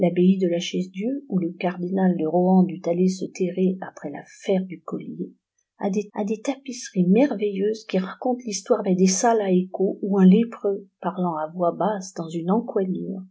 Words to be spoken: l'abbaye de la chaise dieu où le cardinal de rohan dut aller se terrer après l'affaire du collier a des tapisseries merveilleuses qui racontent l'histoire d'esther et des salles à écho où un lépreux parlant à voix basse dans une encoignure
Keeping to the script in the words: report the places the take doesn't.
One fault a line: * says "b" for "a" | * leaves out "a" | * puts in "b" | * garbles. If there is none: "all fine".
* puts in "a des"
* leaves out "d'esther"